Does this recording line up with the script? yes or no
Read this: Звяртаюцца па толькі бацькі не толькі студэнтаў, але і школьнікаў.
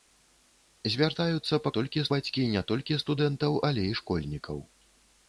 yes